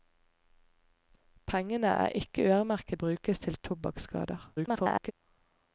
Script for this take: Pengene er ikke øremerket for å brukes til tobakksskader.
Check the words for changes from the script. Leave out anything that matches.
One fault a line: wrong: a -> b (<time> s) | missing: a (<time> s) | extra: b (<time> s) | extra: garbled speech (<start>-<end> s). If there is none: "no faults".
missing: for (3.0 s)
extra: garbled speech (4.6-5.1 s)